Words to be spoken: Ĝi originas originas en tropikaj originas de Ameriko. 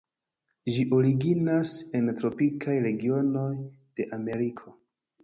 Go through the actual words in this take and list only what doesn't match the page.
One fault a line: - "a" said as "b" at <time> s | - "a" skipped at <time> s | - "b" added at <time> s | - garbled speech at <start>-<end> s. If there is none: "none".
- "originas" skipped at 1.7 s
- "originas" said as "regionoj" at 2.9 s